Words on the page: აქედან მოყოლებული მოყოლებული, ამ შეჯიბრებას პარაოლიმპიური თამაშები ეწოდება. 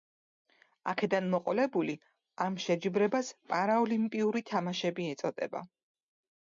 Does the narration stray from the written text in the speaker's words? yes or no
yes